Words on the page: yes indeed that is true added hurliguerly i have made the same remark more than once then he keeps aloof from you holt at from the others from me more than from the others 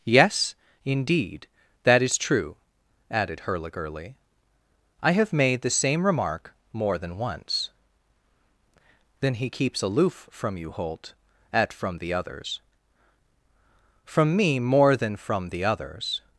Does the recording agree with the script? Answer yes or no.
yes